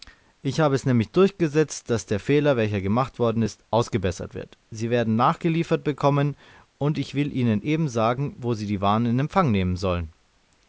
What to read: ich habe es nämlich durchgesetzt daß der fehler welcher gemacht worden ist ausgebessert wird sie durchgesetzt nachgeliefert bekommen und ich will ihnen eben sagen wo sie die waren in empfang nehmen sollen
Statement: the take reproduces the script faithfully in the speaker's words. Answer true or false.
false